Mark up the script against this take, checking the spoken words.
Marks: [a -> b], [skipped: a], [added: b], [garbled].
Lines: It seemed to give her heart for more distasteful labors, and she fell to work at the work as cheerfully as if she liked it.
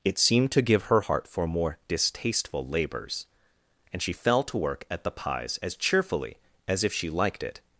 It seemed to give her heart for more distasteful labors, and she fell to work at the [work -> pies] as cheerfully as if she liked it.